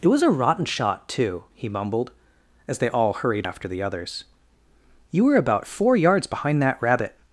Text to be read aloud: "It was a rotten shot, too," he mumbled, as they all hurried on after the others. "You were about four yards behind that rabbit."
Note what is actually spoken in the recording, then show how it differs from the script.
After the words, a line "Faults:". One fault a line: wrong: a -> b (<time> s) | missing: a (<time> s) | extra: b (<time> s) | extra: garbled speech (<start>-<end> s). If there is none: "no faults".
"It was a rotten shot, too," he mumbled, as they all hurried after the others. "You were about four yards behind that rabbit."
Faults:
missing: on (3.5 s)